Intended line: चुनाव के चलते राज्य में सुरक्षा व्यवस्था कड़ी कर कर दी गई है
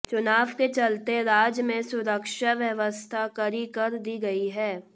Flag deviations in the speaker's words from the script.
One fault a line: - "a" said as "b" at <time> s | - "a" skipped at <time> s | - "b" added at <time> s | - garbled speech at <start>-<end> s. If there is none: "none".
- "कर" skipped at 4.0 s